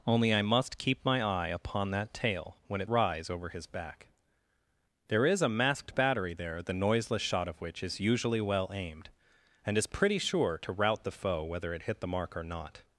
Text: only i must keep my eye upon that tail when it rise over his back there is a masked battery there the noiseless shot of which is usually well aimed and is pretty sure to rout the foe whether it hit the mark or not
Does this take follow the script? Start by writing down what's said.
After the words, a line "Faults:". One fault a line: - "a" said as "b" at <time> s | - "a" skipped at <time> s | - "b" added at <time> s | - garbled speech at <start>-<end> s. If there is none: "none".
only i must keep my eye upon that tail when it rise over his back there is a masked battery there the noiseless shot of which is usually well aimed and is pretty sure to rout the foe whether it hit the mark or not
Faults:
none